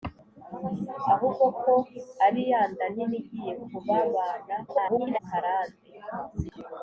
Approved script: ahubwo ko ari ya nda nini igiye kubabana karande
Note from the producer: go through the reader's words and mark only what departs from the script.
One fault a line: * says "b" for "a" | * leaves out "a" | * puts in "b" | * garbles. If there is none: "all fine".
* garbles